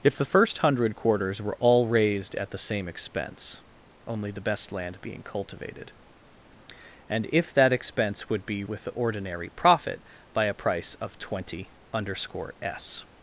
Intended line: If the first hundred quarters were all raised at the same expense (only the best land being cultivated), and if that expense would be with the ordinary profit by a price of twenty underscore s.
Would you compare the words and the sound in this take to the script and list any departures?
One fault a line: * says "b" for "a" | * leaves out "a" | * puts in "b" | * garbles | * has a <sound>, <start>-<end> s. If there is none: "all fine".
all fine